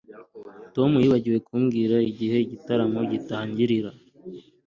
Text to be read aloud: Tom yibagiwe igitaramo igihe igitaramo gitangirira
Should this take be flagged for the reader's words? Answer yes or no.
yes